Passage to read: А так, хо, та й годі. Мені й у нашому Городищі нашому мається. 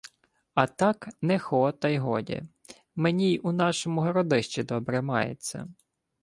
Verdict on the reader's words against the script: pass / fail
fail